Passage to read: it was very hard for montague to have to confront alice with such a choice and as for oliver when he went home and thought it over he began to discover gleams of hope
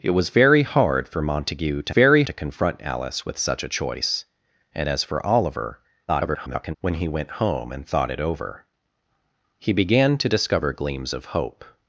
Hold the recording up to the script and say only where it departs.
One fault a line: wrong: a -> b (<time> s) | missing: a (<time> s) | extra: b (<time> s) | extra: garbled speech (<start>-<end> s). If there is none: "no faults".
wrong: have -> very (1.9 s)
extra: garbled speech (6.1-6.8 s)